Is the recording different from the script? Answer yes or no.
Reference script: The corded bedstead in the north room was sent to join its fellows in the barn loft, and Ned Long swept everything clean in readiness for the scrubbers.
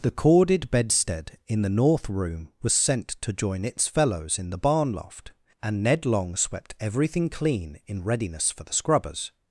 no